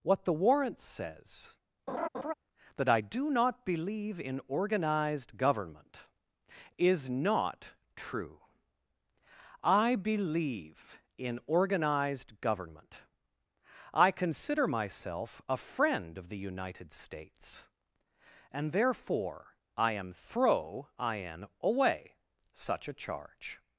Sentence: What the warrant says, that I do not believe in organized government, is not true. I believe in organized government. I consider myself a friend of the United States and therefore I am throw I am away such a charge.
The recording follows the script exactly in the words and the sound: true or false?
false